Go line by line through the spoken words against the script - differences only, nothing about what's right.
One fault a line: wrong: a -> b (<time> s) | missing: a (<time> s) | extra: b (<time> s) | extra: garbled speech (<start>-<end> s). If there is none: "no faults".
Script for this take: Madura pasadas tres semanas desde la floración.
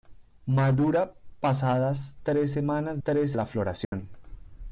wrong: desde -> tres (3.0 s)